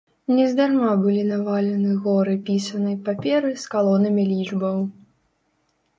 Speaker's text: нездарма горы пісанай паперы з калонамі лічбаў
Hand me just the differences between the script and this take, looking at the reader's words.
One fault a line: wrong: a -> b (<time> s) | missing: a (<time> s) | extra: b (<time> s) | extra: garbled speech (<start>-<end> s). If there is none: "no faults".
extra: былі навалены (1.0 s)